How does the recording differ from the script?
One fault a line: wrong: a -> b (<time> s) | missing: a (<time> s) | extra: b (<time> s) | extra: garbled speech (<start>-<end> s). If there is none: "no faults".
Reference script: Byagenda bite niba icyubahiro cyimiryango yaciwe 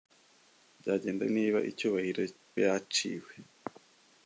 missing: bite (1.2 s)
missing: cyimiryango (2.2 s)